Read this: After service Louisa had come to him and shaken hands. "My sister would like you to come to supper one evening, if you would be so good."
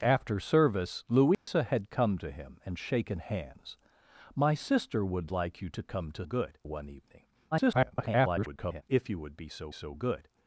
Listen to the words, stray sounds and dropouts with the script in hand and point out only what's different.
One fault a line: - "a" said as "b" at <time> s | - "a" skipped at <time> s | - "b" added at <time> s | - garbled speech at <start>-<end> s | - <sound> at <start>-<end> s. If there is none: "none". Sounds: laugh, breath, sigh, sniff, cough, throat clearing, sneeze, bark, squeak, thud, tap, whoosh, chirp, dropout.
- dropout at 1.3-1.5 s
- "supper" said as "good" at 6.2 s
- garbled speech at 7.5-8.8 s
- "so" added at 9.7 s